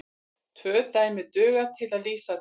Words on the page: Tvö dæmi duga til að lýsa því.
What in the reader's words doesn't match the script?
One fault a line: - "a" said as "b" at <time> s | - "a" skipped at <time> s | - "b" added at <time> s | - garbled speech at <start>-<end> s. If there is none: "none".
none